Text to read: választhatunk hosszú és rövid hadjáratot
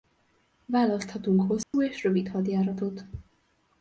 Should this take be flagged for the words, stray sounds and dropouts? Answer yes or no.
yes